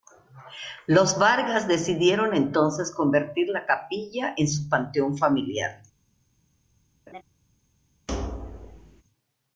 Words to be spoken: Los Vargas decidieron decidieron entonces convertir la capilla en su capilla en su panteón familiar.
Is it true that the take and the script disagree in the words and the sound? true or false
true